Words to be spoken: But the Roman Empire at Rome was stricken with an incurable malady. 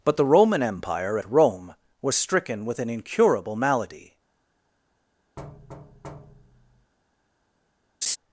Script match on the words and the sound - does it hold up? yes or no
no